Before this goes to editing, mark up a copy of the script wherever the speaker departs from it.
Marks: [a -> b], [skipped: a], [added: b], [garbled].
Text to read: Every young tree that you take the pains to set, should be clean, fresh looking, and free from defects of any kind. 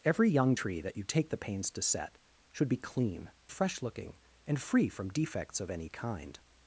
Every young tree that you take the pains to set, should be clean, fresh looking, and free from defects of any kind.